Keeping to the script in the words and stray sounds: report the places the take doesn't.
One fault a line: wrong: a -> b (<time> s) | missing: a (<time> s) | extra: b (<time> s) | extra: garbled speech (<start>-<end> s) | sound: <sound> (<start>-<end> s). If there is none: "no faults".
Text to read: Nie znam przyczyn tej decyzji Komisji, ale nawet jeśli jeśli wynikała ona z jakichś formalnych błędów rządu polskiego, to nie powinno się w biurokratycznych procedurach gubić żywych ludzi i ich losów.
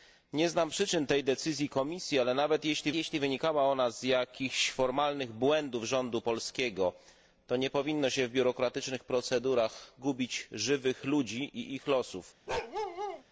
sound: bark (12.5-13.2 s)